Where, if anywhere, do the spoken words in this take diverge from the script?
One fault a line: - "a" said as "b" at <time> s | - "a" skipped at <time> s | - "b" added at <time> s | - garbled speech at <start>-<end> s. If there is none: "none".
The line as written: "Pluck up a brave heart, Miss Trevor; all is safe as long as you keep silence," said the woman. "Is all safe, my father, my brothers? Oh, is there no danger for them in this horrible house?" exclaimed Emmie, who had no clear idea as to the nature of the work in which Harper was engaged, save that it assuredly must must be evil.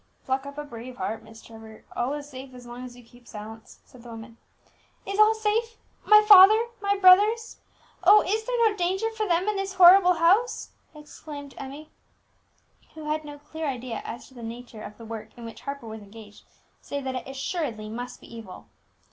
- "must" skipped at 18.2 s